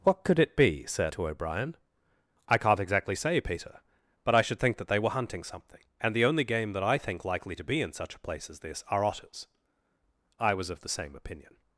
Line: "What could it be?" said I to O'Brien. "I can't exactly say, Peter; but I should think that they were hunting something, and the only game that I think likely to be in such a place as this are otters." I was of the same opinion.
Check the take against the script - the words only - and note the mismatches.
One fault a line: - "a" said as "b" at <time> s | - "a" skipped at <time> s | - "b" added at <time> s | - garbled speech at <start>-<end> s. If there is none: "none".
- "I" skipped at 1.1 s